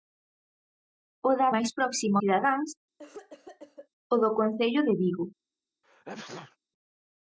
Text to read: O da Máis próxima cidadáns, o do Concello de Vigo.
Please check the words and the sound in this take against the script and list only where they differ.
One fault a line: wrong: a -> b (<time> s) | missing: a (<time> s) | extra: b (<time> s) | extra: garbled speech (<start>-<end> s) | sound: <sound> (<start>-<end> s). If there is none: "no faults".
sound: cough (3.0-3.9 s)
sound: sneeze (5.8-6.6 s)